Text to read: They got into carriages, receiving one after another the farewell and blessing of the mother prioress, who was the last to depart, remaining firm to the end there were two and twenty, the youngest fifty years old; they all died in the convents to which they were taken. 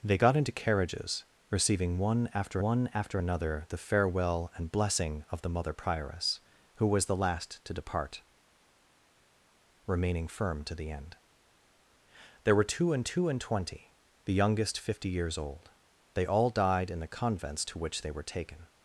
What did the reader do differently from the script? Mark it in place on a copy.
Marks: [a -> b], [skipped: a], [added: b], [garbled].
They got into carriages, receiving one after [added: one after] another the farewell and blessing of the mother prioress, who was the last to depart, remaining firm to the end there were two and [added: two and] twenty, the youngest fifty years old; they all died in the convents to which they were taken.